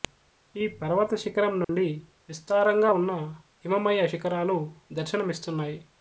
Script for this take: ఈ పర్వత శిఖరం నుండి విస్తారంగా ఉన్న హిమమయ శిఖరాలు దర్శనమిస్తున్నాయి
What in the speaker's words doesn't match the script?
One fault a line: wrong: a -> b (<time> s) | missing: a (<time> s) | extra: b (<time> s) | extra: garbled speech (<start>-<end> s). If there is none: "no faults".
no faults